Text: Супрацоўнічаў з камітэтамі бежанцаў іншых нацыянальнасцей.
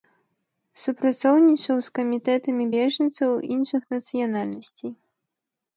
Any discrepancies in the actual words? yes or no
no